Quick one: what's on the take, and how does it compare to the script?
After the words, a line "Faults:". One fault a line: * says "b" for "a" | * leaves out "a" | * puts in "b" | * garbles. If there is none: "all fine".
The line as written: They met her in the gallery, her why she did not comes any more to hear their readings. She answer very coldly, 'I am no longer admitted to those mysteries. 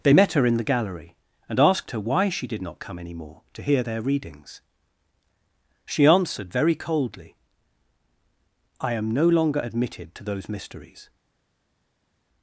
They met her in the gallery, and asked her why she did not come any more to hear their readings. She answered very coldly, 'I am no longer admitted to those mysteries.
Faults:
* puts in "and asked"
* says "come" for "comes"
* says "answered" for "answer"